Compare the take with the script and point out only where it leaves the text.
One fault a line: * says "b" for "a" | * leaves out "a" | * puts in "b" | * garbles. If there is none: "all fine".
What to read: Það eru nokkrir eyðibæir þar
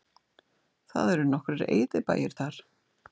all fine